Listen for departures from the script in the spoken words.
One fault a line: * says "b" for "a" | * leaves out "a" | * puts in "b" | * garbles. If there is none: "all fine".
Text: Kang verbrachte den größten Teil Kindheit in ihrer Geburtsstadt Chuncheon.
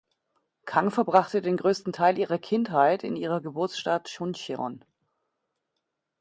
* puts in "ihrer"